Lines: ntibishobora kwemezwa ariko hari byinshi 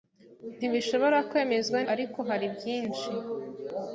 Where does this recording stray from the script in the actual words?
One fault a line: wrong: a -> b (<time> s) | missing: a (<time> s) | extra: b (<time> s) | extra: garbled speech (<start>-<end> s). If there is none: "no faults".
no faults